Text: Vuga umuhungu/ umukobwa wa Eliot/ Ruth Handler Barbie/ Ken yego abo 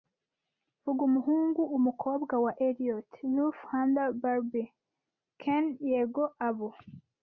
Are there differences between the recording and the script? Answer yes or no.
no